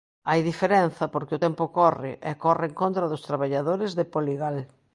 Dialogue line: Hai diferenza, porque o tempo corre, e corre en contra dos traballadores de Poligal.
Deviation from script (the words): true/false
false